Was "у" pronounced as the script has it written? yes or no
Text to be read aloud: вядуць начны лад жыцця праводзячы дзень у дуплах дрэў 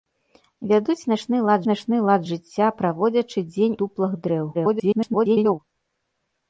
no